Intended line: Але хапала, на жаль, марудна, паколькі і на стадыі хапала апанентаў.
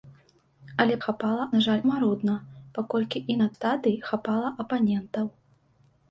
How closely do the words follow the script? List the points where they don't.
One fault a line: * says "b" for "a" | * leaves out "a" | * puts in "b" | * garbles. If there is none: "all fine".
all fine